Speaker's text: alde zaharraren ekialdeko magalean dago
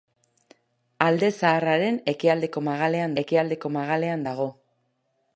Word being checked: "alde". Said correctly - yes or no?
yes